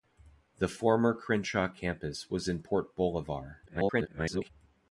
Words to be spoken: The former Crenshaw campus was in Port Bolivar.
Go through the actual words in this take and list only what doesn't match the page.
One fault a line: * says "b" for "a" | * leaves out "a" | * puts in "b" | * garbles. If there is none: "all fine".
* garbles